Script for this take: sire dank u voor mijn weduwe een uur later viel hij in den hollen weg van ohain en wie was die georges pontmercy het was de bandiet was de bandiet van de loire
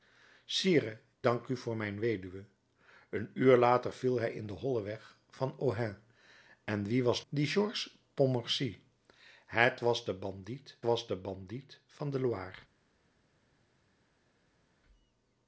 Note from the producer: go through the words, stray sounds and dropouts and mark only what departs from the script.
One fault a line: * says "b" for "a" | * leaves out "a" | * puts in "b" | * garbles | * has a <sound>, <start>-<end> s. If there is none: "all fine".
all fine